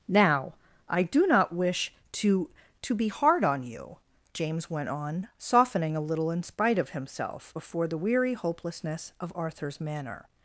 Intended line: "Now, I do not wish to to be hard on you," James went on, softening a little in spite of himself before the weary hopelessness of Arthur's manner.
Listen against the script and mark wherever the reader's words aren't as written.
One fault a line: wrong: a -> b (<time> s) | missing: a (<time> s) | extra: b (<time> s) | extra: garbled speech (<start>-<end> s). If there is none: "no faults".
no faults